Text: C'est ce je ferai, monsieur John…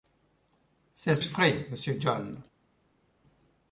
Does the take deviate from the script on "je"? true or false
false